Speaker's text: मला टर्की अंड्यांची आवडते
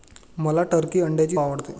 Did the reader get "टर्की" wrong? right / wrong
right